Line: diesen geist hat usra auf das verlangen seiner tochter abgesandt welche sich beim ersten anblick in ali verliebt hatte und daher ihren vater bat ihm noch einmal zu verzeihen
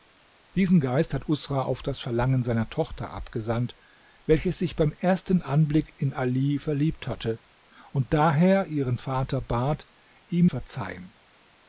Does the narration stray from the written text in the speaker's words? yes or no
yes